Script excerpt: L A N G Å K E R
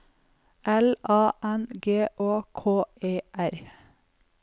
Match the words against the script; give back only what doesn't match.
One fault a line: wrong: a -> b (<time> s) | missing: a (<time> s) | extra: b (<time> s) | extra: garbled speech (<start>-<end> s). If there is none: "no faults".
no faults